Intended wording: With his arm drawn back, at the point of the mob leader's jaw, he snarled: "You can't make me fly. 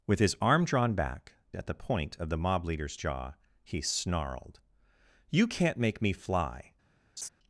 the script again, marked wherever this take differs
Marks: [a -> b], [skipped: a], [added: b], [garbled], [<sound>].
With his arm drawn back, at the point of the mob leader's jaw, he snarled: "You can't make me fly. [laugh]